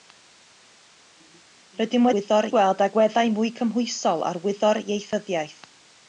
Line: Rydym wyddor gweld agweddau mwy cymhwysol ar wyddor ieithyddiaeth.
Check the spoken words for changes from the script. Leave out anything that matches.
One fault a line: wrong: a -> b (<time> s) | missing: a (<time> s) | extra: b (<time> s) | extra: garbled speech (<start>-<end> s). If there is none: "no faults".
no faults